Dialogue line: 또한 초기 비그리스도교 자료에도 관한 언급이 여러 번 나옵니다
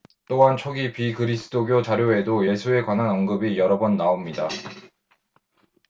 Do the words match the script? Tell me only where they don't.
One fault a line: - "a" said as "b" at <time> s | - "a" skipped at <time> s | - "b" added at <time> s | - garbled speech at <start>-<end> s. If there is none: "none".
- "예수에" added at 2.4 s